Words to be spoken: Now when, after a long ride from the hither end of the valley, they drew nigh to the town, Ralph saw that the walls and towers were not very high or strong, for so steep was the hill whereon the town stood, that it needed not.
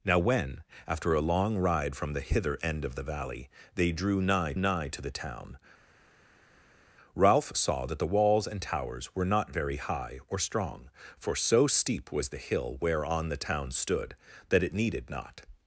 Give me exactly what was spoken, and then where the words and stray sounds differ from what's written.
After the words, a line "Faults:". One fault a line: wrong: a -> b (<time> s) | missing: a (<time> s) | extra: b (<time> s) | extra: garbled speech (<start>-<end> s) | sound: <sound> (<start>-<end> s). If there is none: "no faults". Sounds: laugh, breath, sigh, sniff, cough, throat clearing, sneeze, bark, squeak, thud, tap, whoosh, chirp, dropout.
Now when, after a long ride from the hither end of the valley, they drew nigh nigh to the town, Ralph saw that the walls and towers were not very high or strong, for so steep was the hill whereon the town stood, that it needed not.
Faults:
extra: nigh (4.5 s)